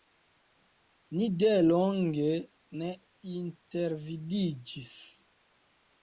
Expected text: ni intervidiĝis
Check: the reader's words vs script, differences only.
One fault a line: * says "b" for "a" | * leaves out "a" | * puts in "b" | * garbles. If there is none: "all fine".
* puts in "delonge ne"